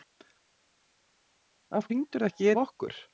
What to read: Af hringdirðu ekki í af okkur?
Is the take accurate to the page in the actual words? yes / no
yes